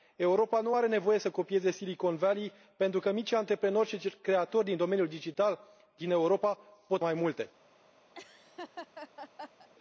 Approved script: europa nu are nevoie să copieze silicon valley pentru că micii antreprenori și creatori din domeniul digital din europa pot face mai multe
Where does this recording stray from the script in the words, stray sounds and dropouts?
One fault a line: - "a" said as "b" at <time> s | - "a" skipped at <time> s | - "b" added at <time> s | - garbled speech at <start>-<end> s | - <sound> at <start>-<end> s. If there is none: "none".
- "face" skipped at 7.0 s
- laugh at 8.1-9.7 s